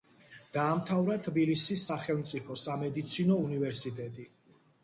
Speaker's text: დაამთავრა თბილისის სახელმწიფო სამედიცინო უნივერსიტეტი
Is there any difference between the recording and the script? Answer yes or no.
no